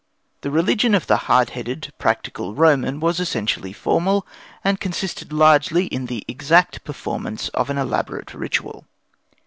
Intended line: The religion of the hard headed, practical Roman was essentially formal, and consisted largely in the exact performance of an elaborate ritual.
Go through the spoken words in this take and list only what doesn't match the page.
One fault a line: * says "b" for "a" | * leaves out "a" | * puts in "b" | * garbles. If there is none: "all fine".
all fine